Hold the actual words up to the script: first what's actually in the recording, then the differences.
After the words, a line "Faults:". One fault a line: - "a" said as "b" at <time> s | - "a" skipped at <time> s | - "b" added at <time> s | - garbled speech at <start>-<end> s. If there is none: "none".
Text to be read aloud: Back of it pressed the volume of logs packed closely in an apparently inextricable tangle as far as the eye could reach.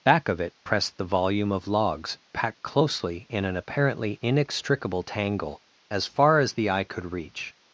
Back of it pressed the volume of logs packed closely in an apparently inextricable tangle as far as the eye could reach.
Faults:
none